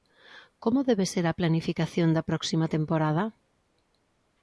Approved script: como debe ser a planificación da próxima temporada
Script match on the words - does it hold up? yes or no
yes